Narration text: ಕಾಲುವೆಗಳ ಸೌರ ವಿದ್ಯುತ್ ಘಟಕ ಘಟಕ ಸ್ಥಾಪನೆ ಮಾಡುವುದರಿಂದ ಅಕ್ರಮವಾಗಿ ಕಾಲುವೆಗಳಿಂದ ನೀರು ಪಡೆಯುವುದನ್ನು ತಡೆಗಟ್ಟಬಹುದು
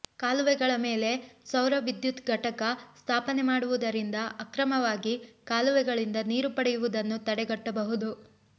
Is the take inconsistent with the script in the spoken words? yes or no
yes